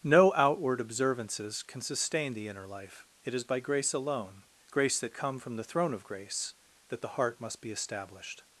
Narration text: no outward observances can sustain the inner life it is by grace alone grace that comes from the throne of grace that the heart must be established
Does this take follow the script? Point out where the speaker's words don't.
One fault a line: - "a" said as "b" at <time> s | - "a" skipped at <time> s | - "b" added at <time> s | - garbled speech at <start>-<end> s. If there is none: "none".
- "comes" said as "come" at 5.1 s